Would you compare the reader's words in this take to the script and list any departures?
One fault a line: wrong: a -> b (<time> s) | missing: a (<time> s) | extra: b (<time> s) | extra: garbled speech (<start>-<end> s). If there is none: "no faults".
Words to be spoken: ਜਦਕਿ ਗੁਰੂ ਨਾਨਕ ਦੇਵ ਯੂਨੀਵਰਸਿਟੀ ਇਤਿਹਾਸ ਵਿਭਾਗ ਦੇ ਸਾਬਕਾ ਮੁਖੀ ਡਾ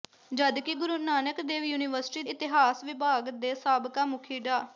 no faults